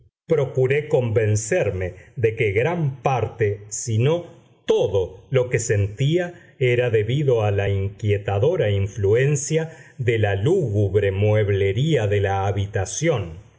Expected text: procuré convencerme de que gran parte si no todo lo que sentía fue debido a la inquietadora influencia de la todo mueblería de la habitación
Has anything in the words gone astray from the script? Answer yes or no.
yes